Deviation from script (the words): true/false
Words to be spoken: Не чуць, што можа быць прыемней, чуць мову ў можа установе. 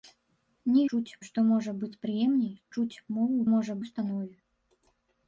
false